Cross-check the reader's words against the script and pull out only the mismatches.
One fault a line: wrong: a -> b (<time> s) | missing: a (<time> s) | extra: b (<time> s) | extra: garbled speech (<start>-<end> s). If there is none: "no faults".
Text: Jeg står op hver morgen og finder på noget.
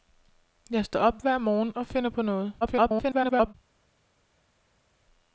extra: garbled speech (2.6-3.5 s)